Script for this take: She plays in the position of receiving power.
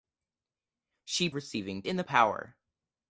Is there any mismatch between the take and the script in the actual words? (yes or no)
yes